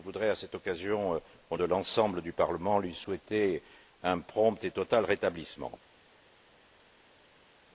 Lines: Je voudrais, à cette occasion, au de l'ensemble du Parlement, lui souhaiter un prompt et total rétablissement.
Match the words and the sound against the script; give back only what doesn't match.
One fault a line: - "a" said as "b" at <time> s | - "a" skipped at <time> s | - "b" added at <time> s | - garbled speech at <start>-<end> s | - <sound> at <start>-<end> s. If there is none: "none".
none